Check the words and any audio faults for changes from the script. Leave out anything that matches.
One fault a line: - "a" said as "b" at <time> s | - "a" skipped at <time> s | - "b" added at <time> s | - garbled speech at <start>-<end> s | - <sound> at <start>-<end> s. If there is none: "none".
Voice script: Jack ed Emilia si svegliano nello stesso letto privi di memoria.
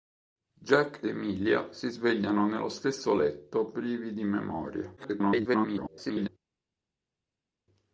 - "ed" skipped at 1.1 s
- garbled speech at 5.0-6.3 s